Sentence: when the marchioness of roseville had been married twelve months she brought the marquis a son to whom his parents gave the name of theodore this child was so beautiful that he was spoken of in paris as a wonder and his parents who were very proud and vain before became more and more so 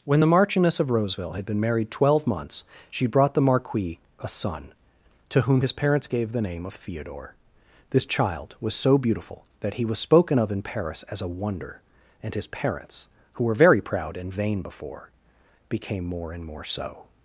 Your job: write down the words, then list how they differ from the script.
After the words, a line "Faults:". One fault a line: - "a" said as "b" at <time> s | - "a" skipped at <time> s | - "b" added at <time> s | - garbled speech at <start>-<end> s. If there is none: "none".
when the marchioness of roseville had been married twelve months she brought the marquis a son to whom his parents gave the name of theodore this child was so beautiful that he was spoken of in paris as a wonder and his parents who were very proud and vain before became more and more so
Faults:
none